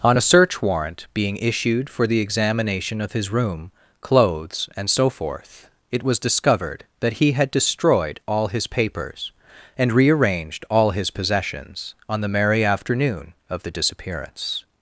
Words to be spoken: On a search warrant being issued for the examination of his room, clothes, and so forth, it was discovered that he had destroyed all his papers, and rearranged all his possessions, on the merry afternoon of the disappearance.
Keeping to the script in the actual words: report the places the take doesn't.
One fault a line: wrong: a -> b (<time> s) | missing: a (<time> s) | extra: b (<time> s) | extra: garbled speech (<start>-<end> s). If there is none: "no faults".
no faults